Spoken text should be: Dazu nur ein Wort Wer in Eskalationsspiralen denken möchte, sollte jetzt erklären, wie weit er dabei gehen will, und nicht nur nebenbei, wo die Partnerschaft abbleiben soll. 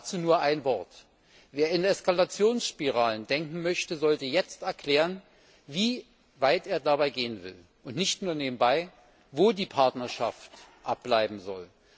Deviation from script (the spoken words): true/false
false